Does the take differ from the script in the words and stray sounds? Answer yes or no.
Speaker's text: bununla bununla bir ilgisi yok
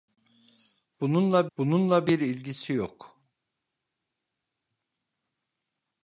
no